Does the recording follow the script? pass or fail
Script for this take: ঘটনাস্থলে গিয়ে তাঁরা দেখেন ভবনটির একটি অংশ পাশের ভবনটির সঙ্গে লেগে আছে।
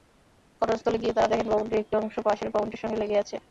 pass